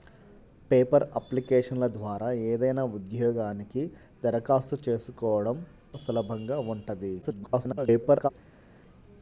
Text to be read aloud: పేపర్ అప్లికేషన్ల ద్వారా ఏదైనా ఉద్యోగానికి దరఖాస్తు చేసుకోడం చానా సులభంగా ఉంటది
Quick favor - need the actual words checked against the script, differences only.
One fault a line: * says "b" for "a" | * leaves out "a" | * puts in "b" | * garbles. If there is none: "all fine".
* leaves out "చానా"
* garbles